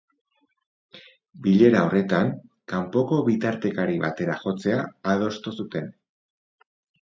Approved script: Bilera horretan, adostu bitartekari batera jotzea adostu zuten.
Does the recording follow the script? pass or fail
fail